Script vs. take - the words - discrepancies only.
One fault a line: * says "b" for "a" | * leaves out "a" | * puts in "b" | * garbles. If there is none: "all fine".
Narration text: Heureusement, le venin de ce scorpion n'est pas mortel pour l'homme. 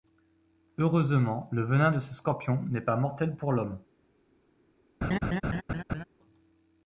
all fine